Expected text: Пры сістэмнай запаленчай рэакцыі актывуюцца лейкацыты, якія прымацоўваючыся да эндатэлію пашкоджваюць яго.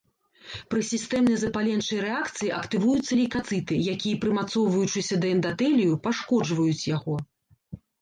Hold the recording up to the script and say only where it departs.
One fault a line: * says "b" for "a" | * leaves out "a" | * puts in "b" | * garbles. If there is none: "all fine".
all fine